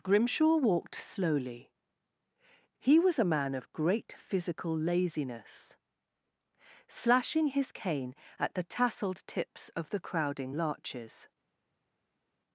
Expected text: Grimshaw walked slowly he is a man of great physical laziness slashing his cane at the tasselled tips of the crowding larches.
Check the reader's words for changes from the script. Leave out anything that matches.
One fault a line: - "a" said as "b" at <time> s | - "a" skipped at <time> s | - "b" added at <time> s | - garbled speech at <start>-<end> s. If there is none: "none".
- "is" said as "was" at 3.0 s